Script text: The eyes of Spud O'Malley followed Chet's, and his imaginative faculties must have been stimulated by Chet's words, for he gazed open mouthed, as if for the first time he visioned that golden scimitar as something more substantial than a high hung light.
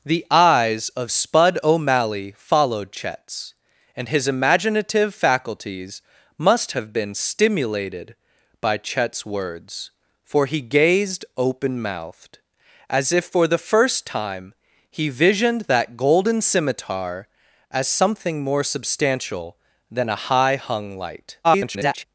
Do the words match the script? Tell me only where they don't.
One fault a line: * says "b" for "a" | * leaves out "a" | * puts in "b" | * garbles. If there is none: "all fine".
* garbles